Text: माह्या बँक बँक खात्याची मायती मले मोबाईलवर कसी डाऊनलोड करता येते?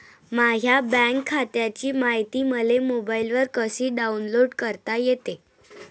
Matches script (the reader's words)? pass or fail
fail